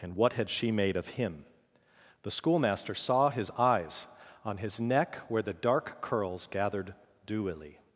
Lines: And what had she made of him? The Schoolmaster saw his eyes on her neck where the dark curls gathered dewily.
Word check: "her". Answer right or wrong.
wrong